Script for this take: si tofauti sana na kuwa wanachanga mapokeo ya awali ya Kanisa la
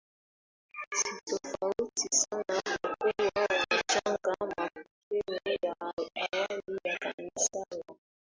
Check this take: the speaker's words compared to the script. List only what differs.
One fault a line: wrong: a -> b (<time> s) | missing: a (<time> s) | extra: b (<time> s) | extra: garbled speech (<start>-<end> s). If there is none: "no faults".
wrong: na -> kwa (2.8 s)